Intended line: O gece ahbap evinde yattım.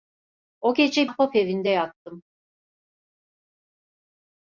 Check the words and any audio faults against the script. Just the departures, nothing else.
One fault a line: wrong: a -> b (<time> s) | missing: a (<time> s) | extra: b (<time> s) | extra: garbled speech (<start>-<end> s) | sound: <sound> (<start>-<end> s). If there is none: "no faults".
no faults